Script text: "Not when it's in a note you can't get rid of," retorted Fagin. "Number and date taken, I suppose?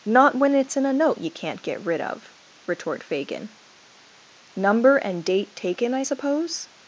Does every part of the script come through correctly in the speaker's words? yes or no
no